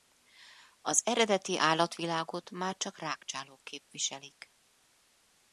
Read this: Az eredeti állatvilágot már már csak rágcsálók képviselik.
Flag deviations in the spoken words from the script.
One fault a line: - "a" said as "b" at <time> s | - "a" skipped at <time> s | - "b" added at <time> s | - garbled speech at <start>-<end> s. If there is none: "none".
- "már" skipped at 2.8 s